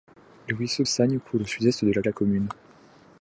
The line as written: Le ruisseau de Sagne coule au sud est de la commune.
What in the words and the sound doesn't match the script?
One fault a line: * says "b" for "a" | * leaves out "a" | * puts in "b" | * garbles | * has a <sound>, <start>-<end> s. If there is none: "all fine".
* leaves out "de"
* puts in "la"